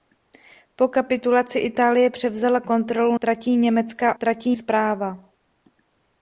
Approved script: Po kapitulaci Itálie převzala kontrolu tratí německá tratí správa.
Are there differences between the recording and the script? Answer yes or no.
no